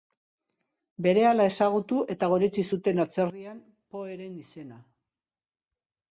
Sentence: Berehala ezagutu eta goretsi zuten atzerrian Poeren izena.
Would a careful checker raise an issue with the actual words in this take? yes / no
no